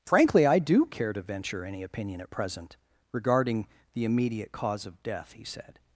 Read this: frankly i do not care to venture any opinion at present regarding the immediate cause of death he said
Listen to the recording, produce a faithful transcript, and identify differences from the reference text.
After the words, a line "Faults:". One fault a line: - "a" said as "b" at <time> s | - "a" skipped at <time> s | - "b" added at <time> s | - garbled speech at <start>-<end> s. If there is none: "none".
frankly i do care to venture any opinion at present regarding the immediate cause of death he said
Faults:
- "not" skipped at 0.8 s